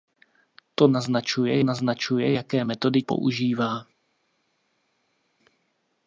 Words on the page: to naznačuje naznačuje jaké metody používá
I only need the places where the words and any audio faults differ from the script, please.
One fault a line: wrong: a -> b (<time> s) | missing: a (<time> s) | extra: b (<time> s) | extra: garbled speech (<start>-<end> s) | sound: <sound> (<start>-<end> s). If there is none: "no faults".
no faults